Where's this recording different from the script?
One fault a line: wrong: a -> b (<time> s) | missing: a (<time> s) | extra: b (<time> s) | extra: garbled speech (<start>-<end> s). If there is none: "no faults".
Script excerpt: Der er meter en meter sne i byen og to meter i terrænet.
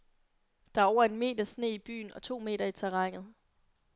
wrong: meter -> over (0.8 s)